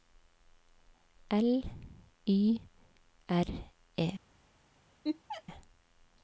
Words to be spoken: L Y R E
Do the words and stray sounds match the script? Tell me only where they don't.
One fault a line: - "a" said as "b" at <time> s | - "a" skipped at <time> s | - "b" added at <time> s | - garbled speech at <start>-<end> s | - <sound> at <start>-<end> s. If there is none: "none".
- laugh at 5.0-5.4 s